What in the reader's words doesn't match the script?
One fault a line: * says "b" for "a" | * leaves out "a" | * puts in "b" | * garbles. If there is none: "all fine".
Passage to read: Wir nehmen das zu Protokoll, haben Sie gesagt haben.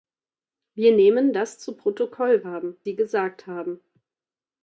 all fine